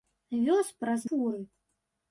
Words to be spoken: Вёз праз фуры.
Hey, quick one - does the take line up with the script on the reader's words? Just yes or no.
yes